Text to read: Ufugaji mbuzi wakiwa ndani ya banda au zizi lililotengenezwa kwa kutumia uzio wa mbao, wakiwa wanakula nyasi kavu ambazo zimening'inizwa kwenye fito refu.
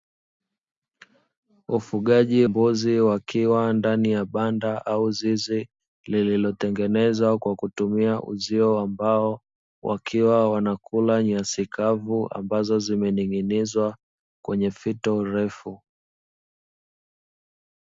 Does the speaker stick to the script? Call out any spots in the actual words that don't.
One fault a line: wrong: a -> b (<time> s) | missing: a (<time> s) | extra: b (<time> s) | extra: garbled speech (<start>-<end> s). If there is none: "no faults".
no faults